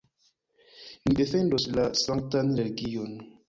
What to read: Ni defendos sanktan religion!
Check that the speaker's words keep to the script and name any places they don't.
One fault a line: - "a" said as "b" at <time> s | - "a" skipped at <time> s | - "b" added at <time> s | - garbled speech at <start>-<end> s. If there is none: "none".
- "la" added at 1.8 s